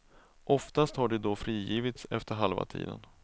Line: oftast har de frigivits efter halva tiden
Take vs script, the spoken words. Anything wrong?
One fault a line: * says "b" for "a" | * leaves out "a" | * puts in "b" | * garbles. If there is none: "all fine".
* puts in "då"